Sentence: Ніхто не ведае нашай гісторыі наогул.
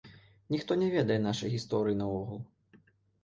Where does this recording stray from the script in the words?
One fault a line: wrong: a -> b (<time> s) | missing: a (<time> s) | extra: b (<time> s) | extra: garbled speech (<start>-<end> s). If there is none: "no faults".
no faults